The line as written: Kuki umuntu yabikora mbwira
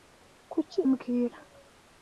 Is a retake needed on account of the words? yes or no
yes